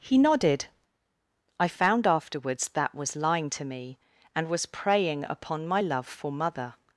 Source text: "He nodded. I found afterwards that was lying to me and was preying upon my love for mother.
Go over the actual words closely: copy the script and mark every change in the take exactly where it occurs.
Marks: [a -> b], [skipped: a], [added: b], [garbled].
"He nodded. I found afterwards that was lying to me and was preying upon my love for mother.